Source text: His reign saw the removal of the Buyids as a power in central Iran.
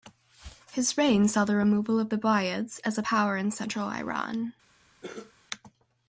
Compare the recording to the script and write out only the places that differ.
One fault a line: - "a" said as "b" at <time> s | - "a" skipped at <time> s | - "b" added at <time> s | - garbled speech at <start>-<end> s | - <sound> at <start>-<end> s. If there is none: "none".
- cough at 5.0-5.3 s